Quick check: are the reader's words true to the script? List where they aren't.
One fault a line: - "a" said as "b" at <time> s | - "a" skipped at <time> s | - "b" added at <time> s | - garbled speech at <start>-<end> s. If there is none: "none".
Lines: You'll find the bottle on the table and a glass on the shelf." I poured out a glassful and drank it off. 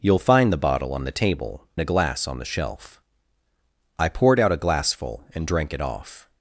- "and" skipped at 1.7 s